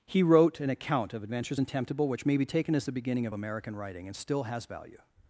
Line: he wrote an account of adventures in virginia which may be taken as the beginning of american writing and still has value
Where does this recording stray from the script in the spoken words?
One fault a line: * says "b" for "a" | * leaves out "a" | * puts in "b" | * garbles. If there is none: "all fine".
* says "temptable" for "virginia"